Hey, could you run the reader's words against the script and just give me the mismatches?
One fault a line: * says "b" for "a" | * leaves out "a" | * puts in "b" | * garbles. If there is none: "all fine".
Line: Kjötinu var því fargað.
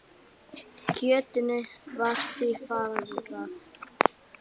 all fine